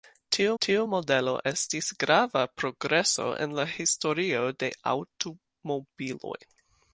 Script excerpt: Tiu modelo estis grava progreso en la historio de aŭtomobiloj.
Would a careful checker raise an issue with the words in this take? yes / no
yes